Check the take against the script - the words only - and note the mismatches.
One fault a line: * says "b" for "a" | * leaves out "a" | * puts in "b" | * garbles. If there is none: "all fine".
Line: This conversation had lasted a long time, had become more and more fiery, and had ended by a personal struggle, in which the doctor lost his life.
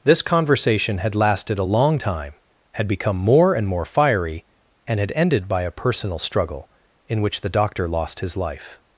all fine